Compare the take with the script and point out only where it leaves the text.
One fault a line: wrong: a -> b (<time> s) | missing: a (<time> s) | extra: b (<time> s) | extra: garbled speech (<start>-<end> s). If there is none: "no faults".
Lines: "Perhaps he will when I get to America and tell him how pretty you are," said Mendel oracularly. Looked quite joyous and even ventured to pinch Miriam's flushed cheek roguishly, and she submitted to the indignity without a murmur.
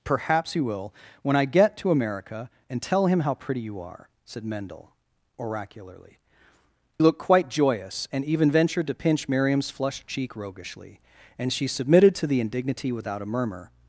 no faults